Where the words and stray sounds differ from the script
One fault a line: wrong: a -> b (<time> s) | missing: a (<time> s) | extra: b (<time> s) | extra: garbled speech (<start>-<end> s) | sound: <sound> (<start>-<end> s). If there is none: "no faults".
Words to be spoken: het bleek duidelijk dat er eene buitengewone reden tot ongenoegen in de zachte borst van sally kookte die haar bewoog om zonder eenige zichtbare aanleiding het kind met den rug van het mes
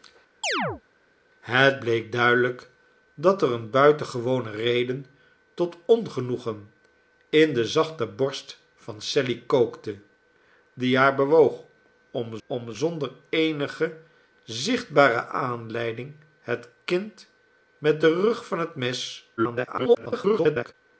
sound: chirp (0.4-0.8 s)
extra: om (12.5 s)
extra: garbled speech (19.4-20.7 s)